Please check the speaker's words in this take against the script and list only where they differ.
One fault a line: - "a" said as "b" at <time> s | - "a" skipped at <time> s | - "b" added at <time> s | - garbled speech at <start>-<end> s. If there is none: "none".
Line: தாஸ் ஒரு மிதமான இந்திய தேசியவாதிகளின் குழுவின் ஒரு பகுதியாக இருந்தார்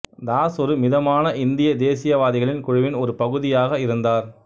none